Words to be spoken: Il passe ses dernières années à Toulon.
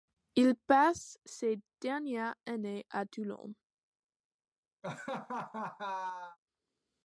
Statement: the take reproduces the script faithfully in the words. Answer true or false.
true